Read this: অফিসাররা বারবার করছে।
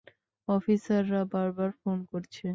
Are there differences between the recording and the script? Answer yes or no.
yes